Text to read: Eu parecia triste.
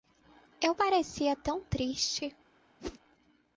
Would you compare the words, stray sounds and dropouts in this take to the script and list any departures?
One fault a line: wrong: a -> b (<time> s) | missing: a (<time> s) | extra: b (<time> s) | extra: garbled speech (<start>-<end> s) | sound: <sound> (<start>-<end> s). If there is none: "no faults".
extra: tão (1.4 s)
sound: whoosh (2.8-3.0 s)